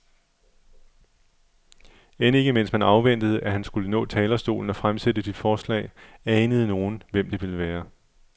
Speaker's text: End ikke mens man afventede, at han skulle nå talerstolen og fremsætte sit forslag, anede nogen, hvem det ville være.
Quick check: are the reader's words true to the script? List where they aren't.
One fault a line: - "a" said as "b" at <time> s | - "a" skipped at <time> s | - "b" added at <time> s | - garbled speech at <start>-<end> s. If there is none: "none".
none